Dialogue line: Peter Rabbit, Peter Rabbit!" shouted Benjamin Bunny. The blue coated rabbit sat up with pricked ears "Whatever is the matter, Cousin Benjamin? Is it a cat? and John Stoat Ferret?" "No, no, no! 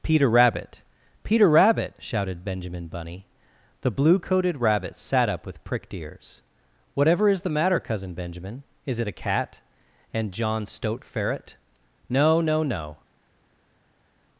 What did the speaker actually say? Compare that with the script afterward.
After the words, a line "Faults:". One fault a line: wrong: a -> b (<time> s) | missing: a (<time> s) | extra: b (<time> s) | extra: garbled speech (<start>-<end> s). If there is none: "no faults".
Peter Rabbit, Peter Rabbit!" shouted Benjamin Bunny. The blue coated rabbit sat up with pricked ears "Whatever is the matter, Cousin Benjamin? Is it a cat? and John Stoat Ferret?" "No, no, no!
Faults:
no faults